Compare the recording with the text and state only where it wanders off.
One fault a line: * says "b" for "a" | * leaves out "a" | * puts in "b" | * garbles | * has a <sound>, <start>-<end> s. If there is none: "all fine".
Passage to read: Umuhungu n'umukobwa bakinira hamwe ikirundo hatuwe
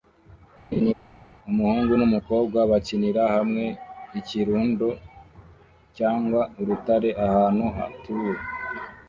* has a laugh, 0.7-0.9 s
* puts in "cyangwa urutare ahantu"